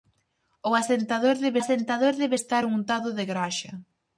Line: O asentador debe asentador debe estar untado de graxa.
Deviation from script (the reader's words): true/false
false